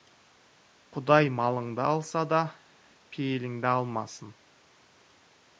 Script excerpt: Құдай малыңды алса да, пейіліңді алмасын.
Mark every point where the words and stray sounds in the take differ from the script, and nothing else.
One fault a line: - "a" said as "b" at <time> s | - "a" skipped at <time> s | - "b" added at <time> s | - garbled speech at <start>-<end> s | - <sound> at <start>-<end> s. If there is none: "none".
none